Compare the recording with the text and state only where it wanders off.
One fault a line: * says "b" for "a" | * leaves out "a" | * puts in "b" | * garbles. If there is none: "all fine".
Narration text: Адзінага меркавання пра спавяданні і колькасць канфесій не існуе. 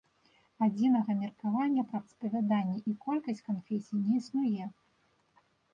all fine